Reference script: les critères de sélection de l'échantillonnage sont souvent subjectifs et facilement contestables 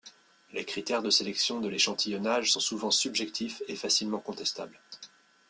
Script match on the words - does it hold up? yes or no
yes